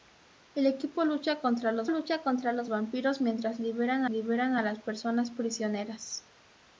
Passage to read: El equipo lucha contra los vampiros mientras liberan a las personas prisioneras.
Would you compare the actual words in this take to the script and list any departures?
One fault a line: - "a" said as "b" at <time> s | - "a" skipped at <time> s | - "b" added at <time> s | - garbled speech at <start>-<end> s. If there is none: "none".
- "lucha contra los" added at 1.9 s
- "liberan" added at 4.1 s